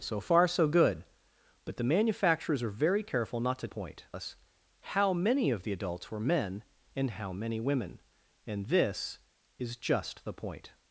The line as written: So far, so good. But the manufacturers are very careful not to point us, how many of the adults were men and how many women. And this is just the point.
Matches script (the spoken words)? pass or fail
pass